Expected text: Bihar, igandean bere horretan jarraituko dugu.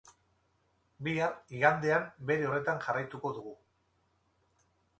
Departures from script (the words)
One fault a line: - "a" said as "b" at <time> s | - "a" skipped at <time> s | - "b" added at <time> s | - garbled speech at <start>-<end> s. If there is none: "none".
none